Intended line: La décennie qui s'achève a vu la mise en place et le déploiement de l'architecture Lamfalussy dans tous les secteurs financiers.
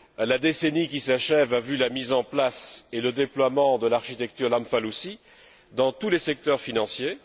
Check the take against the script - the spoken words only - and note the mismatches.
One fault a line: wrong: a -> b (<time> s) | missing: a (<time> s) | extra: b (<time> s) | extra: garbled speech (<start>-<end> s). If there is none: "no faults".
no faults